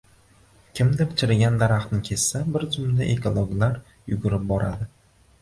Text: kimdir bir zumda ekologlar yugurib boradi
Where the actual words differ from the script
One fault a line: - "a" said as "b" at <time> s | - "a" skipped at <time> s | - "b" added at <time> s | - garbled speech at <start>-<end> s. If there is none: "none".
- "chirigan daraxtni kessa" added at 1.2 s